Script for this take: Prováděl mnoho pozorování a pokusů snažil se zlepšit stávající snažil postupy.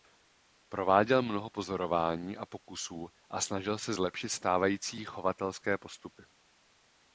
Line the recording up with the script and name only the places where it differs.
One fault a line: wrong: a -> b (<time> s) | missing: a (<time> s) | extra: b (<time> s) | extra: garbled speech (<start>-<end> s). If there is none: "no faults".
extra: a (3.3 s)
wrong: snažil -> chovatelské (5.1 s)